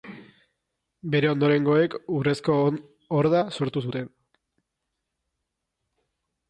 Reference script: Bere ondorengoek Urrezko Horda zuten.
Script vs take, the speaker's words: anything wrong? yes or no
yes